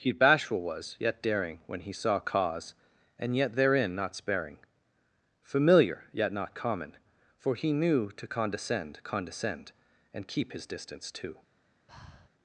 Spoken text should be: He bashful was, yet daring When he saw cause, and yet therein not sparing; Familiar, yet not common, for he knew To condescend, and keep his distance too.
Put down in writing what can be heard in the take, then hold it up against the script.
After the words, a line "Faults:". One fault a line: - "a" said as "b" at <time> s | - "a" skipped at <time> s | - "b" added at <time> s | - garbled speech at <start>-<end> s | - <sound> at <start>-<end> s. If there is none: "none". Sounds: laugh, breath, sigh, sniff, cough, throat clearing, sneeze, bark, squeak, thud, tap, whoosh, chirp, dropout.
He bashful was, yet daring When he saw cause, and yet therein not sparing; Familiar, yet not common, for he knew To condescend condescend, and keep his distance too.
Faults:
- "condescend" added at 9.0 s
- breath at 11.9-12.3 s